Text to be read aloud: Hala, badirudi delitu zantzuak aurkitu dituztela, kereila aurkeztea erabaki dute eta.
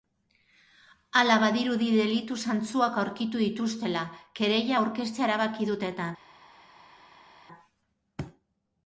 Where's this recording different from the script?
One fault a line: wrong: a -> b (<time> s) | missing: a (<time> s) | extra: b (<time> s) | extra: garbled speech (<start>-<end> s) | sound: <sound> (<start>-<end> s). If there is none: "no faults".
no faults